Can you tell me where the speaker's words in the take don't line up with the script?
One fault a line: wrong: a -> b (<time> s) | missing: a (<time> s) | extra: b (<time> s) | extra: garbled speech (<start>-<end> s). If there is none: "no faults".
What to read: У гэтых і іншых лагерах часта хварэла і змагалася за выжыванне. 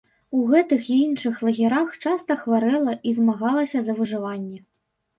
no faults